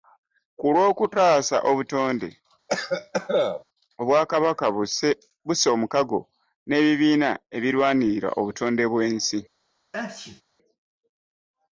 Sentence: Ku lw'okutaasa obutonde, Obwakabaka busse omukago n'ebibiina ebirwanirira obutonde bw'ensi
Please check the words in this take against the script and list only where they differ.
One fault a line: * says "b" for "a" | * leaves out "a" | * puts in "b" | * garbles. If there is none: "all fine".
all fine